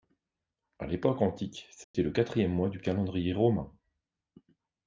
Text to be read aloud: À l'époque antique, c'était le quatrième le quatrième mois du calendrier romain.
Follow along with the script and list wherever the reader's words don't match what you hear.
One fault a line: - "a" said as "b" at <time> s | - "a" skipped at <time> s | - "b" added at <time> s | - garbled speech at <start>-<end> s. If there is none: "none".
- "le quatrième" skipped at 2.5 s